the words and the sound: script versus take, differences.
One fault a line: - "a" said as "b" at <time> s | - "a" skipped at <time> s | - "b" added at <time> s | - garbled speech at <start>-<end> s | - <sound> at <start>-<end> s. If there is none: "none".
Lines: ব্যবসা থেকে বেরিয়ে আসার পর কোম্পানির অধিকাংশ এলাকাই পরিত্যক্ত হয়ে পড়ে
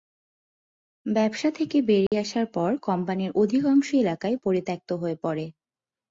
- dropout at 2.1-2.1 s